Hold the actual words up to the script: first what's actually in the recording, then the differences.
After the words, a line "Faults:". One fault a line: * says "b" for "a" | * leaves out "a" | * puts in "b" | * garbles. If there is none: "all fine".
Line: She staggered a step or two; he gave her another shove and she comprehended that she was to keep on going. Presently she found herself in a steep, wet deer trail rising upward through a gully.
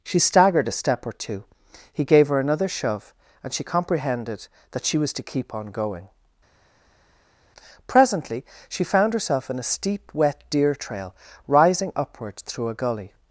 She staggered a step or two; he gave her another shove and she comprehended that she was to keep on going. Presently she found herself in a steep, wet deer trail rising upward through a gully.
Faults:
all fine